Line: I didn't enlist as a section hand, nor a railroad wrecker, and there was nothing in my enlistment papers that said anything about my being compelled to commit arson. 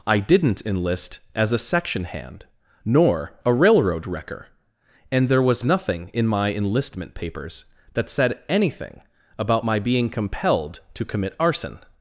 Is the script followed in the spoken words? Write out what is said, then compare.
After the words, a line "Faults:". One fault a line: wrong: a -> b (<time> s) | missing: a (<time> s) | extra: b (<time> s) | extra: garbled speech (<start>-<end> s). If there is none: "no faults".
I didn't enlist as a section hand, nor a railroad wrecker, and there was nothing in my enlistment papers that said anything about my being compelled to commit arson.
Faults:
no faults